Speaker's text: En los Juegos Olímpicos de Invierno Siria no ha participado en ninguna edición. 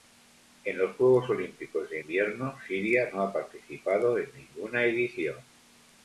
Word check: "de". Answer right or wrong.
right